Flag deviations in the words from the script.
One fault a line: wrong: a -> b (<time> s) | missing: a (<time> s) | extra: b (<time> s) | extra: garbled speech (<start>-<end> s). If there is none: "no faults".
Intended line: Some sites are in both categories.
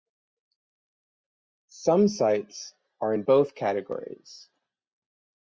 no faults